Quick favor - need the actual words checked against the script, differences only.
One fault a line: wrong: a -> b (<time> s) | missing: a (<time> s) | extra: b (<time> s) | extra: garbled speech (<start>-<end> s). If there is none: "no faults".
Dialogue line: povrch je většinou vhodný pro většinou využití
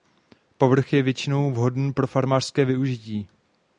wrong: většinou -> farmářské (2.1 s)